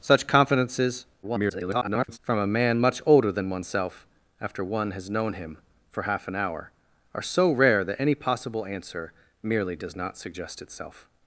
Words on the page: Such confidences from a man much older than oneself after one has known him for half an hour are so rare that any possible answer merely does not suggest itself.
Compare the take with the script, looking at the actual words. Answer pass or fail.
fail